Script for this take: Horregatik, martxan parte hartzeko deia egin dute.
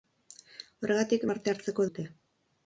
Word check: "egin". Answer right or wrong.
wrong